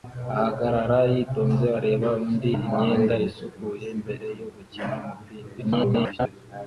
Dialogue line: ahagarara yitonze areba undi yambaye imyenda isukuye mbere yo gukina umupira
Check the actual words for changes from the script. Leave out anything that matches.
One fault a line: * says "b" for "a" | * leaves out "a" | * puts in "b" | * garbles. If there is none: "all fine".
* leaves out "yambaye"
* garbles